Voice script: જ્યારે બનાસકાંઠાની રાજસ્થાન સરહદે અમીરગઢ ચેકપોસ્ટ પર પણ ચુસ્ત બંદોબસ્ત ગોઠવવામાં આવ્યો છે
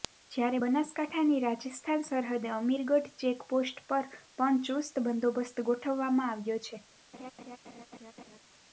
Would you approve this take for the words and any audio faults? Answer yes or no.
no